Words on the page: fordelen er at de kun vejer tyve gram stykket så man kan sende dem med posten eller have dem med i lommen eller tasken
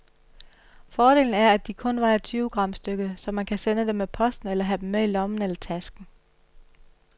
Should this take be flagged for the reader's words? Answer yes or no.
no